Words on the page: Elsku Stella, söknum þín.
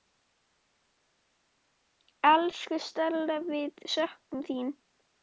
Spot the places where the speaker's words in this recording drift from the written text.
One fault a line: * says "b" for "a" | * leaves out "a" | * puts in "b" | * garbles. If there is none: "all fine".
* puts in "við"